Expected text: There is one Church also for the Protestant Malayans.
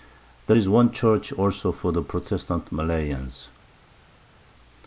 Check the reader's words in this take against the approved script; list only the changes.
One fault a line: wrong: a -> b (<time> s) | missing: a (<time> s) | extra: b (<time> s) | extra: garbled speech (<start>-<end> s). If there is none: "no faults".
no faults